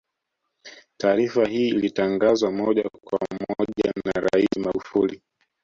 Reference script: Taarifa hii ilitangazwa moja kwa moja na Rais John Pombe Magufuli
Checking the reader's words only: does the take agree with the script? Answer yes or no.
no